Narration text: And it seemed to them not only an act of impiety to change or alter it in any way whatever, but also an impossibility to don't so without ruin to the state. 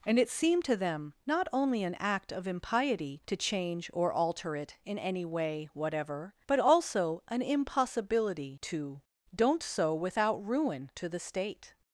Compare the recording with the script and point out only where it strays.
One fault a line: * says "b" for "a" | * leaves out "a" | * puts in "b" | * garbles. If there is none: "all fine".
all fine